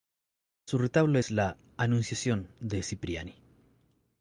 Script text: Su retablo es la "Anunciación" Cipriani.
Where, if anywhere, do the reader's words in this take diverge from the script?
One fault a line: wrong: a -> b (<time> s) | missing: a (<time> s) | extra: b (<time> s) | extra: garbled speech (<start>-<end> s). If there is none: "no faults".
extra: de (2.6 s)